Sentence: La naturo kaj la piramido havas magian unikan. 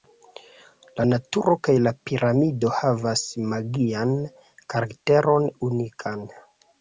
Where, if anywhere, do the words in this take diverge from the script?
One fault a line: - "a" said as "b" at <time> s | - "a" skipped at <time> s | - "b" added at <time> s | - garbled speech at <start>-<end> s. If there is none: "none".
- "karakteron" added at 4.8 s